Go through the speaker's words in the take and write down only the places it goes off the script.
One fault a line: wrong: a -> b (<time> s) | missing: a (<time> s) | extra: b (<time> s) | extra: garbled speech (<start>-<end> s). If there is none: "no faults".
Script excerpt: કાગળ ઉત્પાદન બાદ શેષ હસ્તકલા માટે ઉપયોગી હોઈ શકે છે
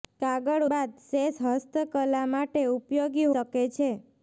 missing: ઉત્પાદન (0.6 s)
missing: હોઈ (3.3 s)